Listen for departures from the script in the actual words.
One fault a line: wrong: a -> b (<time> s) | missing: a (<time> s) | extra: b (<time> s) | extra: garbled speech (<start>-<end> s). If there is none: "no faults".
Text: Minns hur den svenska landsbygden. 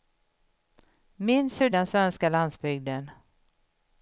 no faults